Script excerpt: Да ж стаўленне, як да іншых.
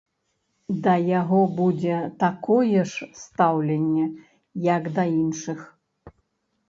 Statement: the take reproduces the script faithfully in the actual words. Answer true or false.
false